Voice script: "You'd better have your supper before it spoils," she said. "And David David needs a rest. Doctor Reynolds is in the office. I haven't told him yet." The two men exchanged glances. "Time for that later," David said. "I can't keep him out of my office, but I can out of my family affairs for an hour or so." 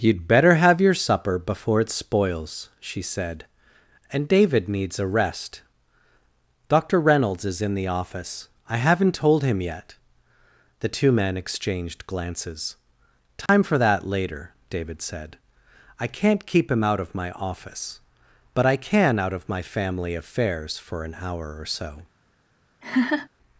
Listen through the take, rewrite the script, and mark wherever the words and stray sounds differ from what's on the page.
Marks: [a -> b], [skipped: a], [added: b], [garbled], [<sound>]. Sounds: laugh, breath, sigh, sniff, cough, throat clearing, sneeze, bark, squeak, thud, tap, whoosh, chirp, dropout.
"You'd better have your supper before it spoils," she said. "And David [skipped: David] needs a rest. Doctor Reynolds is in the office. I haven't told him yet." The two men exchanged glances. "Time [dropout] for that later," David said. "I can't keep him out of my office, but I can out of my family affairs for an hour or so." [laugh]